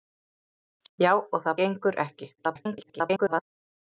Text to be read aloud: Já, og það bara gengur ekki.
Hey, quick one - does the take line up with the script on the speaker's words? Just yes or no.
no